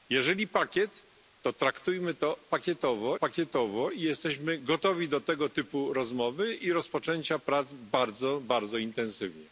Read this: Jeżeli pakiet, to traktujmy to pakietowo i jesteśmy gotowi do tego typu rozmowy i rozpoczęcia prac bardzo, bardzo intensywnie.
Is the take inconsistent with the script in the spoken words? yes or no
yes